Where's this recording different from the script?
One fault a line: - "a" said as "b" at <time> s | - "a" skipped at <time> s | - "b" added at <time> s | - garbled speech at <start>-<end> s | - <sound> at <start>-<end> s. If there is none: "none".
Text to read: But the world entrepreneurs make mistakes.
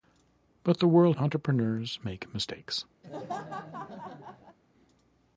- laugh at 3.0-4.6 s